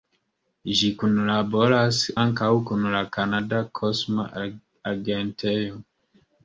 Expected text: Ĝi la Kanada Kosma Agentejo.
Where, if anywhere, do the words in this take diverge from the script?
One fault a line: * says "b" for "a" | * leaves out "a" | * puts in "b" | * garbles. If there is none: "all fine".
* puts in "kunlaboras ankaŭ kun"